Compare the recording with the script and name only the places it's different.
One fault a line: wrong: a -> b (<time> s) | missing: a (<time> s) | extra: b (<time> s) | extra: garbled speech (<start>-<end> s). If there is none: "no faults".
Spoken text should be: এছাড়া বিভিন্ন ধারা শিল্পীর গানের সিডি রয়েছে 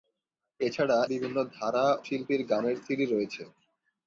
no faults